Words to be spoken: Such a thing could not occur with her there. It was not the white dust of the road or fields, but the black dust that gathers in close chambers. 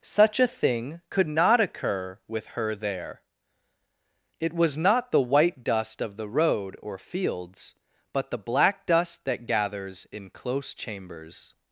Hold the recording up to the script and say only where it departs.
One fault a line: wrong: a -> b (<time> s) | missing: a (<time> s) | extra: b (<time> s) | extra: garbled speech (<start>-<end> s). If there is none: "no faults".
no faults